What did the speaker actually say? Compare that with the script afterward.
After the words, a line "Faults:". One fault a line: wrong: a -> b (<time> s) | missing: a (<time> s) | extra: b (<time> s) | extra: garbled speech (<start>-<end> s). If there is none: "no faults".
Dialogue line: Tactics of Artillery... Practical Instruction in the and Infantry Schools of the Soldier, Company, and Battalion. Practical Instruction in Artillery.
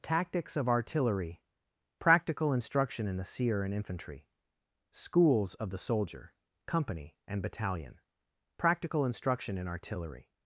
Tactics of Artillery... Practical Instruction in the seer and Infantry Schools of the Soldier, Company, and Battalion. Practical Instruction in Artillery.
Faults:
extra: seer (3.2 s)